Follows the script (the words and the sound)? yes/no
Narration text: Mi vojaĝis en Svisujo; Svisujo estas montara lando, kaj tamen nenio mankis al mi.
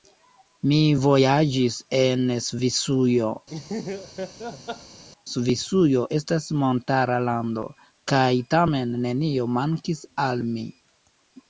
no